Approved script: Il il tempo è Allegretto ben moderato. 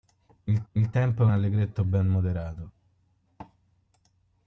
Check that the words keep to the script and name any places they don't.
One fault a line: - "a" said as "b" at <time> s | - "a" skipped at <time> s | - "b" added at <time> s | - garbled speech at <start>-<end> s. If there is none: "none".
none